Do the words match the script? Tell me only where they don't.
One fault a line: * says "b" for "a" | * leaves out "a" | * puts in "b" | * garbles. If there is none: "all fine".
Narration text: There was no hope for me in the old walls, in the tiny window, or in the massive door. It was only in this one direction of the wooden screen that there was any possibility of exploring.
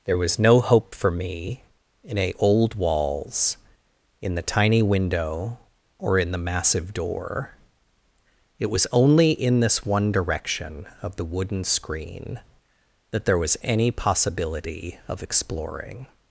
* says "a" for "the"